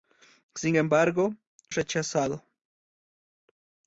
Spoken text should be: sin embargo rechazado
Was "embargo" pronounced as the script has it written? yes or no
yes